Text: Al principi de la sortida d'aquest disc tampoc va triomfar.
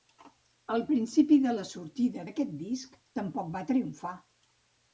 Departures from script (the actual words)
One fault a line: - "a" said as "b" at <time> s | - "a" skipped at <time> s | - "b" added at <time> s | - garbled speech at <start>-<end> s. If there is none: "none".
none